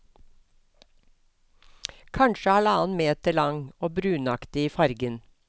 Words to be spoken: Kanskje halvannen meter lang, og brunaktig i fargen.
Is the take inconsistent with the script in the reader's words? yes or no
no